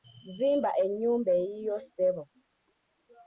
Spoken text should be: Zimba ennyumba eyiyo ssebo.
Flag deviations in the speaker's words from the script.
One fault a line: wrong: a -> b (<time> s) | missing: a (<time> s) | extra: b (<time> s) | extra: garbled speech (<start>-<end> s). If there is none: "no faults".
no faults